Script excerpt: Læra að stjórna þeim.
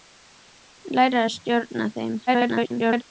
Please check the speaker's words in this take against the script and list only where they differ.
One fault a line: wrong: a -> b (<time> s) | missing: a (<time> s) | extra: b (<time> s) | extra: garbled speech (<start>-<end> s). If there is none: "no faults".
extra: garbled speech (2.3-3.0 s)